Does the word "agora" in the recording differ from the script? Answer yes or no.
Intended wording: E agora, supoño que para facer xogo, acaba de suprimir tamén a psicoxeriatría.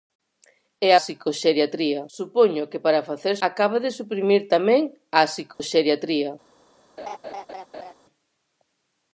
yes